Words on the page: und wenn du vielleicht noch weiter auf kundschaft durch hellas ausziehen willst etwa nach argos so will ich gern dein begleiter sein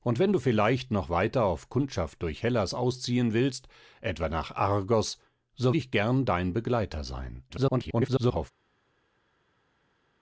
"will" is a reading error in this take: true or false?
true